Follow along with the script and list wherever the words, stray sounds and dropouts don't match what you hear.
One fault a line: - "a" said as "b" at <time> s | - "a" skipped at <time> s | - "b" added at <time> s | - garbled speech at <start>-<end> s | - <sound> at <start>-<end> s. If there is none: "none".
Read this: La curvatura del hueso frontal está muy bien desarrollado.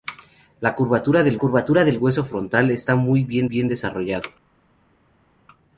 - "curvatura del" added at 1.4 s
- "bien" added at 3.4 s